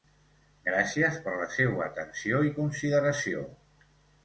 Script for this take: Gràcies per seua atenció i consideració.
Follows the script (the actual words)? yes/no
no